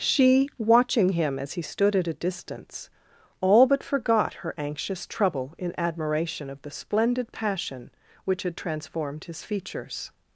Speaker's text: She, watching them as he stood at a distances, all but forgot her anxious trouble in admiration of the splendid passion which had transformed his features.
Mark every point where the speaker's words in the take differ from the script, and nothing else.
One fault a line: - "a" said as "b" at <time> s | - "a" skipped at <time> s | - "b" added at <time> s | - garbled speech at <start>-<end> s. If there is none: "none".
- "them" said as "him" at 1.1 s
- "distances" said as "distance" at 2.1 s